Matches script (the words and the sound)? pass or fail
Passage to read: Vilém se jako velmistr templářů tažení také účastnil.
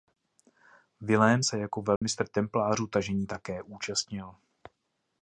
fail